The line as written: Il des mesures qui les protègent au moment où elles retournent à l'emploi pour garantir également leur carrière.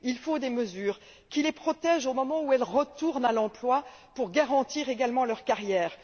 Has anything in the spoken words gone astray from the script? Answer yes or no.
yes